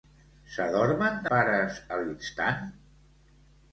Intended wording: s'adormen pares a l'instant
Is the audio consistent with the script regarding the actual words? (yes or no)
yes